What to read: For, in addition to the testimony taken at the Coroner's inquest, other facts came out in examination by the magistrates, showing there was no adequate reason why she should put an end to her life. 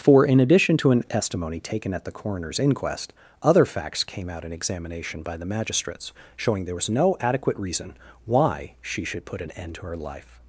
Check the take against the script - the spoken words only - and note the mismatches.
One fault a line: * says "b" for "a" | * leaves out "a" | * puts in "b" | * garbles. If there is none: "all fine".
* says "an" for "the"